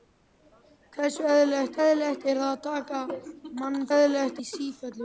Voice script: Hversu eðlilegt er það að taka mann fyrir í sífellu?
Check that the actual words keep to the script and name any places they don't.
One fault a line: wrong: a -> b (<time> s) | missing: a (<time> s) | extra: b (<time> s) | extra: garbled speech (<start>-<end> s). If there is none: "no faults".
extra: eðlilegt (1.8 s)
wrong: fyrir -> eðlilegt (4.0 s)